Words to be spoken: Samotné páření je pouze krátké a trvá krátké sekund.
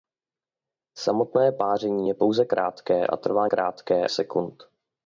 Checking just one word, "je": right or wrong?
right